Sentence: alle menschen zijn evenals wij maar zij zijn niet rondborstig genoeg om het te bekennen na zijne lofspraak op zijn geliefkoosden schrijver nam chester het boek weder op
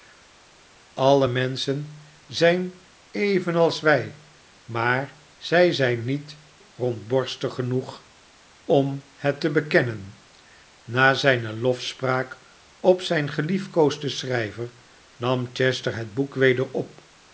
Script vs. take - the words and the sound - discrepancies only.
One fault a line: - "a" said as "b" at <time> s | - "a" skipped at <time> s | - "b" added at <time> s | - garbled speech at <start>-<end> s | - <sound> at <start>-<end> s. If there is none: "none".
none